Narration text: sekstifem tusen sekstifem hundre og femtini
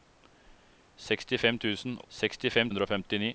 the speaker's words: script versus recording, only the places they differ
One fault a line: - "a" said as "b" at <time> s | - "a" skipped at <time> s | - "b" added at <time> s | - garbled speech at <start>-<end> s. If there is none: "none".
none